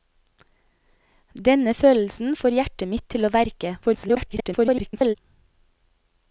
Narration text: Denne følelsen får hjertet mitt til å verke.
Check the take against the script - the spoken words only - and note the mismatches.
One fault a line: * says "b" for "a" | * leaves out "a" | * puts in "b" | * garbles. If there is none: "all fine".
* garbles